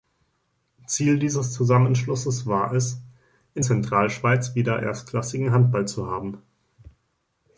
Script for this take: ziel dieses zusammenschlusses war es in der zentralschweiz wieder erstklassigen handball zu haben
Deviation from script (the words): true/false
true